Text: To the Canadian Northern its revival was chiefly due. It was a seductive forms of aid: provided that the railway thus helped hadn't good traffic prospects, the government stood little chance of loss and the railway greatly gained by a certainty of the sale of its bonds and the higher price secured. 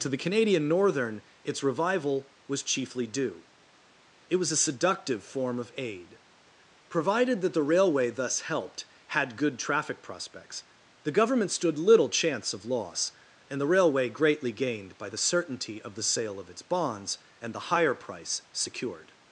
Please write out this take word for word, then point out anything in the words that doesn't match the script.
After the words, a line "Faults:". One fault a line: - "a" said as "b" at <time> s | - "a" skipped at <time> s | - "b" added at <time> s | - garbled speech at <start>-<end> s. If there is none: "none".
To the Canadian Northern its revival was chiefly due. It was a seductive form of aid: provided that the railway thus helped had good traffic prospects, the government stood little chance of loss and the railway greatly gained by the certainty of the sale of its bonds and the higher price secured.
Faults:
- "forms" said as "form" at 5.2 s
- "hadn't" said as "had" at 9.1 s
- "a" said as "the" at 15.1 s